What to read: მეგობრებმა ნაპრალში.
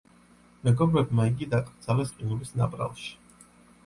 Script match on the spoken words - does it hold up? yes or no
no